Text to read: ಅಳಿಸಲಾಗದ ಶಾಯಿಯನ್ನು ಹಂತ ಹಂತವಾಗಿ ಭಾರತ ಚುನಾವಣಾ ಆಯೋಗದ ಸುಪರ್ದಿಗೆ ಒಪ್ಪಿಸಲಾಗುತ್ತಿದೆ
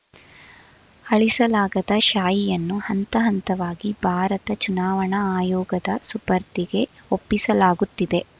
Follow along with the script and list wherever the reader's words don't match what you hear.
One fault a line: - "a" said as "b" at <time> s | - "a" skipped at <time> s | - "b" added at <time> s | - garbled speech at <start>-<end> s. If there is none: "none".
none